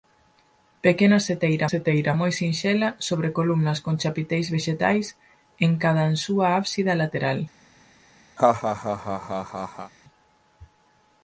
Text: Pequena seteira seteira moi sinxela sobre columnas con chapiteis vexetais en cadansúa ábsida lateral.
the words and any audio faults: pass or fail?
fail